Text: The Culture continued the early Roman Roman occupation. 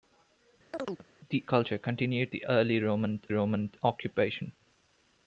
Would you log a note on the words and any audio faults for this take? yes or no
yes